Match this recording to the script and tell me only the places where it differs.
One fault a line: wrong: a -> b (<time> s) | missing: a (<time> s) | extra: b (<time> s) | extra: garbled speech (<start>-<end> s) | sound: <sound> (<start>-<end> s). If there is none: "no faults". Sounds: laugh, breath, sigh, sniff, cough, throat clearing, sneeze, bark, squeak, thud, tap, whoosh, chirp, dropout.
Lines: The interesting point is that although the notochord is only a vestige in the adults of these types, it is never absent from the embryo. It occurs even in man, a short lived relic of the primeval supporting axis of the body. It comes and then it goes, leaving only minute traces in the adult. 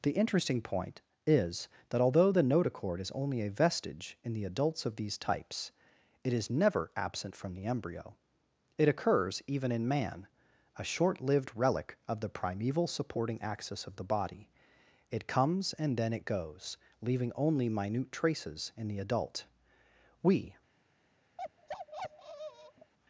extra: We (20.2 s)
sound: bark (21.4-22.9 s)